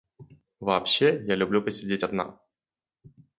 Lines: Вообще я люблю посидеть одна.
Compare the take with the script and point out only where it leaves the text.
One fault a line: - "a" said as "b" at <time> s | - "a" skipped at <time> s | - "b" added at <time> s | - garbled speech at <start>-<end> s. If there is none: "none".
none